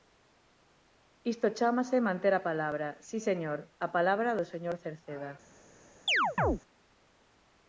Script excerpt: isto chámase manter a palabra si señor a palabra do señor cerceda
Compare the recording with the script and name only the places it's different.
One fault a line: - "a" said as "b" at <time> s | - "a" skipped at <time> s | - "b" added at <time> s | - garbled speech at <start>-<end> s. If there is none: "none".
none